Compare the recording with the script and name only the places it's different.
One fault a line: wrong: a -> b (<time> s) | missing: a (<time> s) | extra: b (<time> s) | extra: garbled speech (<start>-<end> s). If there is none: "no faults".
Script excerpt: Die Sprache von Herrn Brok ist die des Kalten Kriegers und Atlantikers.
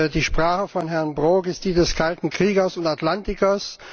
no faults